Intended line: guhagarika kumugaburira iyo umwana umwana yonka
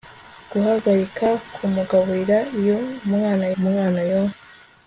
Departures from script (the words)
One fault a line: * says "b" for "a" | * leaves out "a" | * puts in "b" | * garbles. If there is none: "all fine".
all fine